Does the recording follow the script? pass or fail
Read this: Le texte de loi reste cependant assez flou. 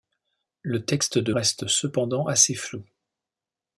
fail